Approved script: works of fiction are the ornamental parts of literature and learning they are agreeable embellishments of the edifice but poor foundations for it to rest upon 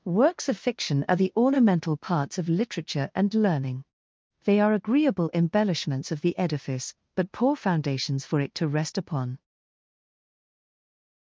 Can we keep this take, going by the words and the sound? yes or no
yes